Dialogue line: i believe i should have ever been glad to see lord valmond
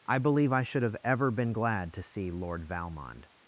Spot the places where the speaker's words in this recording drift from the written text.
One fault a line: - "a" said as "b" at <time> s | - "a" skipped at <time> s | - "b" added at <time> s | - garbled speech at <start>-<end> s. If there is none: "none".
none